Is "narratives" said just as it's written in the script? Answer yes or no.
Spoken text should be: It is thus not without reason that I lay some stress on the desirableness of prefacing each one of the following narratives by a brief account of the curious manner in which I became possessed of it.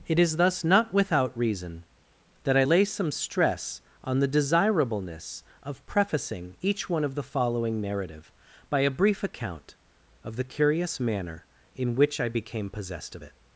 no